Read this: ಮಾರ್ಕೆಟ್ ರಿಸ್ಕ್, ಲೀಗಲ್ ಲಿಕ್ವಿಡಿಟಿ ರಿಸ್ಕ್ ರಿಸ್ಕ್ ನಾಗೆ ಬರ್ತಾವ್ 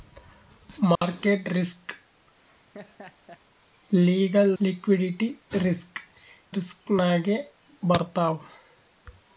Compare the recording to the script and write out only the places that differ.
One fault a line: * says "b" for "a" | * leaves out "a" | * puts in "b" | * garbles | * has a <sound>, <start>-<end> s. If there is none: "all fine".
* has a dropout, 1.0-1.0 s
* has a laugh, 2.4-3.4 s